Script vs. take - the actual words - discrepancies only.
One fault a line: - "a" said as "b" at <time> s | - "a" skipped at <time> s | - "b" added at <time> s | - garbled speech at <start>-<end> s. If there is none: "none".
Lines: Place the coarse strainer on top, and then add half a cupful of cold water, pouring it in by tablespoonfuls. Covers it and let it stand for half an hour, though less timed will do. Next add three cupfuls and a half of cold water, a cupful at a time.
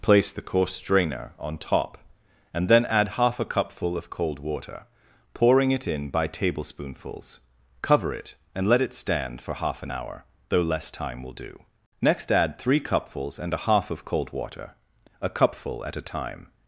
- "Covers" said as "Cover" at 7.8 s
- "timed" said as "time" at 10.9 s